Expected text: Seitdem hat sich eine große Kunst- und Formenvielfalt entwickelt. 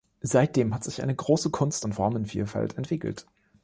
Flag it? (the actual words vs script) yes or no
no